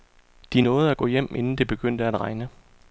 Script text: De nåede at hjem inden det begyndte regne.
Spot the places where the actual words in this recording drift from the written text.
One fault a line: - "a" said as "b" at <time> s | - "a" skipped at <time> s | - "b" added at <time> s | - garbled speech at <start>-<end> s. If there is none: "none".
- "gå" added at 1.0 s
- "at" added at 2.0 s